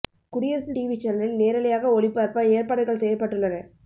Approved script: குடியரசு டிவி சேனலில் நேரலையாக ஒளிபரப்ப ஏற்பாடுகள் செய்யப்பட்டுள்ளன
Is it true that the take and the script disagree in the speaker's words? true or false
false